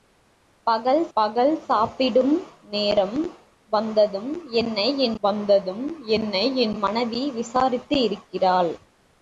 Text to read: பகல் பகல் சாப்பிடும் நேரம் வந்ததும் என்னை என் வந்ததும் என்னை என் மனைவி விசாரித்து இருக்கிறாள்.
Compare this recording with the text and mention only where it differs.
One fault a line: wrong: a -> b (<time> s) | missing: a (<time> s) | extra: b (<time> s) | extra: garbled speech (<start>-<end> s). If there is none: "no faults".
no faults